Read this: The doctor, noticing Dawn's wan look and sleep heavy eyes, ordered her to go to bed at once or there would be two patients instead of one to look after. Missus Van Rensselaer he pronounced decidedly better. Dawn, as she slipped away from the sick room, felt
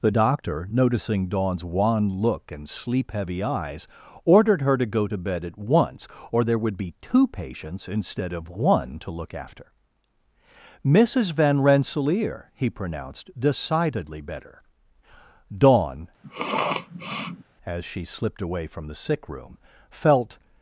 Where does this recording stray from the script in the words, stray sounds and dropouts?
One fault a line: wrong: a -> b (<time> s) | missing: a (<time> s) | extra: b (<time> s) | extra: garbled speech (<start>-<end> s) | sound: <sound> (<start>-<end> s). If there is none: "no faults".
sound: sniff (16.2-17.4 s)